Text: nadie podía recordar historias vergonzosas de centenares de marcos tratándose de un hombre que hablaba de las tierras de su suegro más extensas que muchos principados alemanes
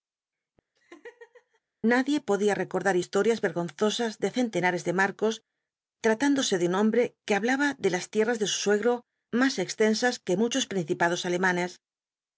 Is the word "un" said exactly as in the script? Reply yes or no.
yes